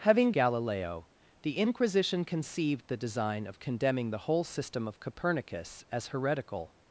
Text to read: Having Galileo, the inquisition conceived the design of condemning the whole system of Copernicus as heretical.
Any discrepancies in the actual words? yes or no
no